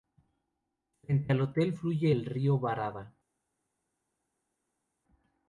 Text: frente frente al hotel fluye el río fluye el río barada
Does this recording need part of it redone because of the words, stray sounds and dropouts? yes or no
yes